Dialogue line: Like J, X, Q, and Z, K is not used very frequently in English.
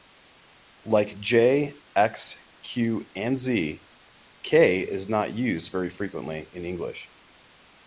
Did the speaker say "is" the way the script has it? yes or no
yes